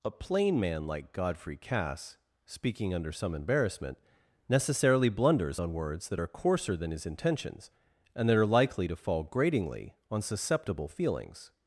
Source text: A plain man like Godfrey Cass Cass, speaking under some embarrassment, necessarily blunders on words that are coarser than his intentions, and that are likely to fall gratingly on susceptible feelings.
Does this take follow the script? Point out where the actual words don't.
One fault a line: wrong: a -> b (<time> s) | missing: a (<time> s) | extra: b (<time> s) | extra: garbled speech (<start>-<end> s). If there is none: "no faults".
missing: Cass (2.2 s)